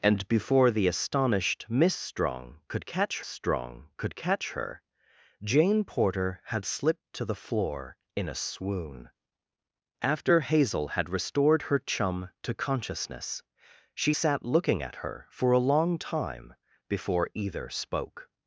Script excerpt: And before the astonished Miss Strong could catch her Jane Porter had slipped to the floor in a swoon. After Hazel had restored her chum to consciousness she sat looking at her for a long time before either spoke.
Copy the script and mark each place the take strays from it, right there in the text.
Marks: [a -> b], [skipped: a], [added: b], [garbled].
And before the astonished Miss Strong could catch [added: Strong could catch] her Jane Porter had slipped to the floor in a swoon. After Hazel had restored her chum to consciousness she sat looking at her for a long time before either spoke.